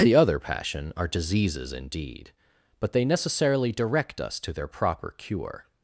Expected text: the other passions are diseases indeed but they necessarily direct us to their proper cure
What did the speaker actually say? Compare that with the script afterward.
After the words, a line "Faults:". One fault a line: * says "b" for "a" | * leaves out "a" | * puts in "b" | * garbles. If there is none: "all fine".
the other passion are diseases indeed but they necessarily direct us to their proper cure
Faults:
* says "passion" for "passions"